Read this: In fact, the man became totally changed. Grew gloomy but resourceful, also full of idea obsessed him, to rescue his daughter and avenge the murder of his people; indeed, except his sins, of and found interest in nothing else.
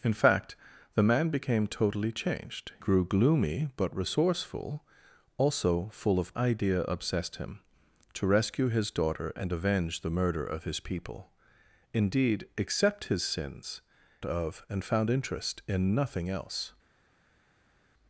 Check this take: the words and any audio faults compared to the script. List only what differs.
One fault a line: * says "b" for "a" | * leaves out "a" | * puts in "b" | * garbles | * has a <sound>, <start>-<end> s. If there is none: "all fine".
all fine